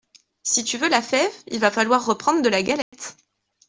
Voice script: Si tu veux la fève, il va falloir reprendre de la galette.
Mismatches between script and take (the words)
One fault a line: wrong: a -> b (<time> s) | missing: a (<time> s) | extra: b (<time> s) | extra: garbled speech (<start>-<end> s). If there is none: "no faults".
no faults